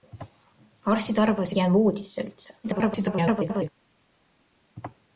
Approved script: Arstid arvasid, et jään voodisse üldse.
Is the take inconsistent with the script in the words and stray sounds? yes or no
yes